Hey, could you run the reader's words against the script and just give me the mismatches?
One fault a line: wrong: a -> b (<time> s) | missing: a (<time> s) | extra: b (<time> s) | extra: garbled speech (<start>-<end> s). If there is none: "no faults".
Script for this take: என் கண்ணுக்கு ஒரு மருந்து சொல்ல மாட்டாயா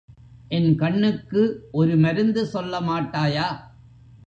no faults